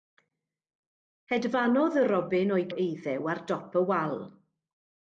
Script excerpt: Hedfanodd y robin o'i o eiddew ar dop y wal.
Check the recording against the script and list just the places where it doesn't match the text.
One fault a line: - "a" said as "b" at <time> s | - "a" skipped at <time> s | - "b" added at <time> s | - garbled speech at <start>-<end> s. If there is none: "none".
none